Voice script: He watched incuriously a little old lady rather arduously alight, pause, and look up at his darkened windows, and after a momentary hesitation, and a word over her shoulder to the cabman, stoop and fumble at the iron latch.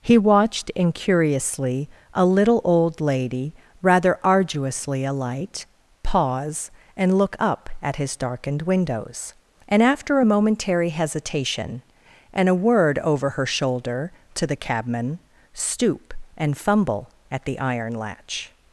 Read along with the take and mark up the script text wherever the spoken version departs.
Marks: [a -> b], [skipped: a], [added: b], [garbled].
He watched incuriously a little old lady rather arduously alight, pause, and look up at his darkened windows, and after a momentary hesitation, and a word over her shoulder to the cabman, stoop and fumble at the iron latch.